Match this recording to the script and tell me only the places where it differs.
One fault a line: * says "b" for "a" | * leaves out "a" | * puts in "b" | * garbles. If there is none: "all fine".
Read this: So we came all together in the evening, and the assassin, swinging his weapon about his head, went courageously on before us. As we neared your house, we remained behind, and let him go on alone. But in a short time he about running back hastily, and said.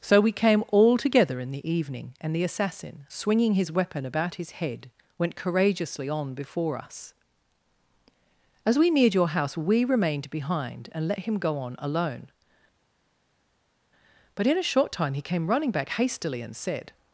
* says "came" for "about"